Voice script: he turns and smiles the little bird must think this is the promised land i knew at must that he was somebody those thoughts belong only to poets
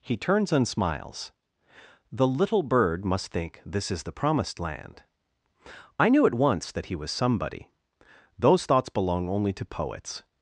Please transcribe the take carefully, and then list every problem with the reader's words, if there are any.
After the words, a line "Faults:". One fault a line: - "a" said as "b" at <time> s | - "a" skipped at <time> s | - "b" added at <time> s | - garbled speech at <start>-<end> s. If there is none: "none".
he turns and smiles the little bird must think this is the promised land i knew at once that he was somebody those thoughts belong only to poets
Faults:
- "must" said as "once" at 6.3 s